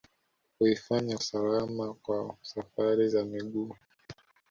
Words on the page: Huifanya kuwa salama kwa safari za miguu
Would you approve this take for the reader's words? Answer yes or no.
no